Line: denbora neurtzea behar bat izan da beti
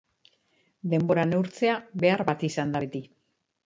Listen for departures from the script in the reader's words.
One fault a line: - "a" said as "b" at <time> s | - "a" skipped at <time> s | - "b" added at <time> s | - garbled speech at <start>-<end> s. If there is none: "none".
none